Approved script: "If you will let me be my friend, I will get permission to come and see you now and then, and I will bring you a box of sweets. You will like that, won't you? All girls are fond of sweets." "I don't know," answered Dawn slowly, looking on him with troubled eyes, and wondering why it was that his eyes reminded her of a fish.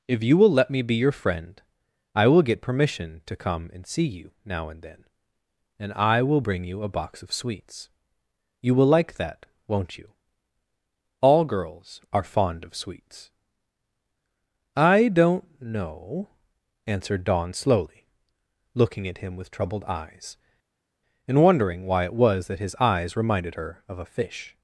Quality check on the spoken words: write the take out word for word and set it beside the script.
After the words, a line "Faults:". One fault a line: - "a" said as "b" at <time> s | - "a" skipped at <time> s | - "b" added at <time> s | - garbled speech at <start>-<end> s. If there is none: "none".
"If you will let me be your friend, I will get permission to come and see you now and then, and I will bring you a box of sweets. You will like that, won't you? All girls are fond of sweets." "I don't know," answered Dawn slowly, looking at him with troubled eyes, and wondering why it was that his eyes reminded her of a fish.
Faults:
- "my" said as "your" at 0.9 s
- "on" said as "at" at 19.1 s